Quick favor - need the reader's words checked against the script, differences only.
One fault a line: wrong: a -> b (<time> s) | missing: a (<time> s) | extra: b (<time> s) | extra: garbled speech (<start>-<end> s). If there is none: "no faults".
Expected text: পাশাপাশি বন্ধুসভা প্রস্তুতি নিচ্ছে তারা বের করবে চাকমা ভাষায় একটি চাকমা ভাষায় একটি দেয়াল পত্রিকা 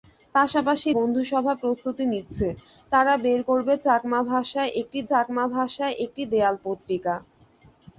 no faults